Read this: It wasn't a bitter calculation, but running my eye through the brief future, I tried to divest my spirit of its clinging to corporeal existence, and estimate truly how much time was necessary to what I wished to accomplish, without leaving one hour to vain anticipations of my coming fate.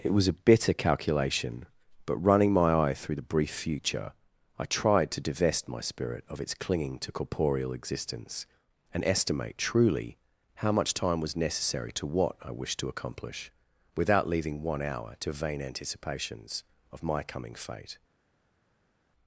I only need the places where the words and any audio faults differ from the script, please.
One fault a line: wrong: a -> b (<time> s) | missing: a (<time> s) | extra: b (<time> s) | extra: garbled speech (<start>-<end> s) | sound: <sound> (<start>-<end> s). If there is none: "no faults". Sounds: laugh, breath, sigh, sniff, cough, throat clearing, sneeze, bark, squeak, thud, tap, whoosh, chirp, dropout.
wrong: wasn't -> was (0.1 s)